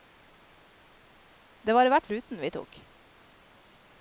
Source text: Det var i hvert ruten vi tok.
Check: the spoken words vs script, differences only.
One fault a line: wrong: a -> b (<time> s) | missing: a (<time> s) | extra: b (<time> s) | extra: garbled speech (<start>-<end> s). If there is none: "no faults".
no faults